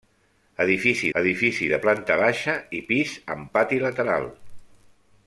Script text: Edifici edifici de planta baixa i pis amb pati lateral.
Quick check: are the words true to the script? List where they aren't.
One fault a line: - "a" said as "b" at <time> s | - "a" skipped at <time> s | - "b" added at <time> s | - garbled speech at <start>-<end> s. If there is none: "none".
none